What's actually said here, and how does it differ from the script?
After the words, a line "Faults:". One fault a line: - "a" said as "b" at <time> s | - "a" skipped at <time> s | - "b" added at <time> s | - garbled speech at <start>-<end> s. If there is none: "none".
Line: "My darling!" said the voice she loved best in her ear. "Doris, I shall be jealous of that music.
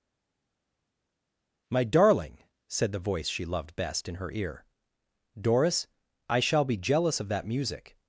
"My darling!" said the voice she loved best in her ear. "Doris, I shall be jealous of that music.
Faults:
none